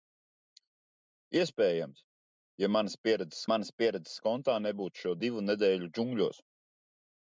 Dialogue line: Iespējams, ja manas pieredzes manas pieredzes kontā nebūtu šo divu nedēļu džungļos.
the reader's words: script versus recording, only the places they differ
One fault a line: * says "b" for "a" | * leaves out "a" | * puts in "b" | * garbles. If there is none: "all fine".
all fine